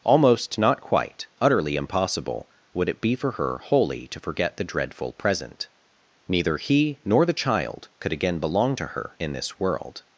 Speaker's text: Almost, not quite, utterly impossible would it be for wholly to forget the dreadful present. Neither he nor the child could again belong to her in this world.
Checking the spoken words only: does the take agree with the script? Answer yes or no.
no